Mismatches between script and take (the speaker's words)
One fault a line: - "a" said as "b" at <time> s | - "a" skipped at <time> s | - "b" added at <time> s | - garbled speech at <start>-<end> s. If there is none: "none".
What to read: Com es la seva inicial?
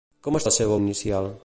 none